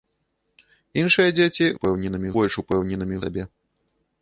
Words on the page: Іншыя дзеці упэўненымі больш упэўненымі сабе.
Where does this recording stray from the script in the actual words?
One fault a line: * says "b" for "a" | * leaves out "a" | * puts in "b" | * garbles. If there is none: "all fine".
all fine